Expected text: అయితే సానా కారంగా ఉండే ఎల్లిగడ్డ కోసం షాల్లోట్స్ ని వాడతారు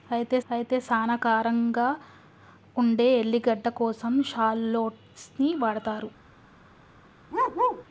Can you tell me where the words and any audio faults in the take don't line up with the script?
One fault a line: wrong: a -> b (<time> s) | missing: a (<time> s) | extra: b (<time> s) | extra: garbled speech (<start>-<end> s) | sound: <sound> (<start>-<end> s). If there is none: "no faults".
extra: అయితే (0.5 s)
sound: bark (7.3-7.9 s)